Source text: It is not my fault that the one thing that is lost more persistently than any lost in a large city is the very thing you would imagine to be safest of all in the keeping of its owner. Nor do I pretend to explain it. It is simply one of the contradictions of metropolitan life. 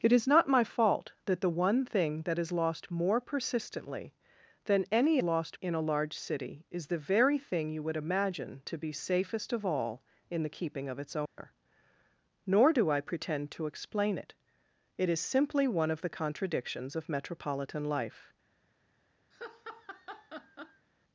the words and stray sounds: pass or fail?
fail